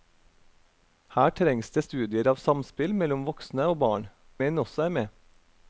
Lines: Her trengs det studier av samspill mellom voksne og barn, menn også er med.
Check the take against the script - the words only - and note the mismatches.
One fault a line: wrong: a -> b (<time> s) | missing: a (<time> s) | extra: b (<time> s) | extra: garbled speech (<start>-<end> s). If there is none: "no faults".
no faults